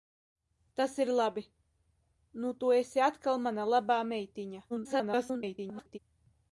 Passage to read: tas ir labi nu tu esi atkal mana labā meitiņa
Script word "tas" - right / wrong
right